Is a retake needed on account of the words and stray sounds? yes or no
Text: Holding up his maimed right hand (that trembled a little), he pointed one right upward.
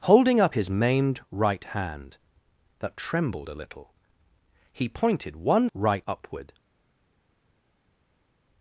no